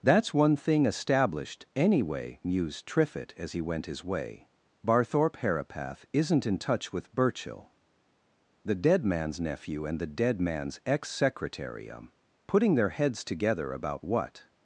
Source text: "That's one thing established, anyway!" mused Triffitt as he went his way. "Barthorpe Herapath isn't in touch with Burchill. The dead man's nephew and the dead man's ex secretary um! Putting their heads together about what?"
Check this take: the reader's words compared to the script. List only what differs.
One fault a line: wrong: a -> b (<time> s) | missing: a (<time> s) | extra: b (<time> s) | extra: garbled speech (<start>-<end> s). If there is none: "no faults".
no faults